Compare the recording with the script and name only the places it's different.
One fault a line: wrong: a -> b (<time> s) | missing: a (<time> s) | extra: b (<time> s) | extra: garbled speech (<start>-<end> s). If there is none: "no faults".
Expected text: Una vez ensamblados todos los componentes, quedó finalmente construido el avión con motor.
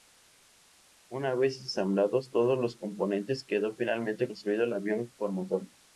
no faults